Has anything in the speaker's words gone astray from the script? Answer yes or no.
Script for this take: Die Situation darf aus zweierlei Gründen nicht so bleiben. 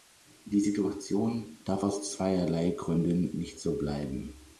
no